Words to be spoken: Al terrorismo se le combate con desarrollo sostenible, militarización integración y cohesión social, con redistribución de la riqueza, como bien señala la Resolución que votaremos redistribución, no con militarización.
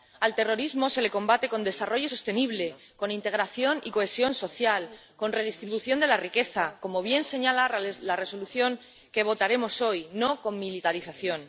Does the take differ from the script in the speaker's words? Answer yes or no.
yes